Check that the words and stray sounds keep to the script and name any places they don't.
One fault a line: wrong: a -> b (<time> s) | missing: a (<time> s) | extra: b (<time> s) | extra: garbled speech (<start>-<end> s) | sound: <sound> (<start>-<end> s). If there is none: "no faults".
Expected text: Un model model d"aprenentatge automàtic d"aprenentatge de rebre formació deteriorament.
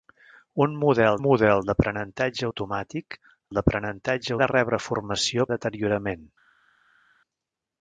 no faults